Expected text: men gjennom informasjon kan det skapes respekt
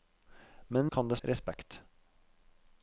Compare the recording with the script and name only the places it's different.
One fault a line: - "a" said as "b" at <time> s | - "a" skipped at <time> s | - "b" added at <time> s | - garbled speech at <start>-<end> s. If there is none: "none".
- "gjennom informasjon" skipped at 0.9 s
- "skapes" skipped at 1.2 s